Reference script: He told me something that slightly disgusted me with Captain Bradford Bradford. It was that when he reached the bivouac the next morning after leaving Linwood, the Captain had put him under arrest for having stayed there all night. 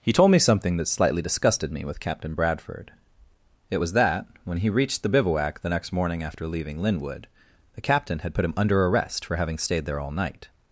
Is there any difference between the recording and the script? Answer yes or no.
yes